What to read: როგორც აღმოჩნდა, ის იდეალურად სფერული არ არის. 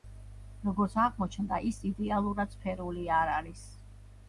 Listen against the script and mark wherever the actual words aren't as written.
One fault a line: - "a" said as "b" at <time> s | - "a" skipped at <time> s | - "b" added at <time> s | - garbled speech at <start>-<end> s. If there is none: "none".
none